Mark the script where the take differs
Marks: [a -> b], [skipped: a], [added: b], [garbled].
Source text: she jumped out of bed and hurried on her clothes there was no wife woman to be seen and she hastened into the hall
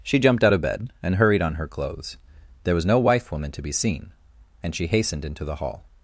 she jumped out of bed and hurried on her clothes there was no wife woman to be seen and she hastened into the hall